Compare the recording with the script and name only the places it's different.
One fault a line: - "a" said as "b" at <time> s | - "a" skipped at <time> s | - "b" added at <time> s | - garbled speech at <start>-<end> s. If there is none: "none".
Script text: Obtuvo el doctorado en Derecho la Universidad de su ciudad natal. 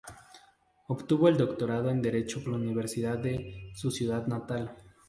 none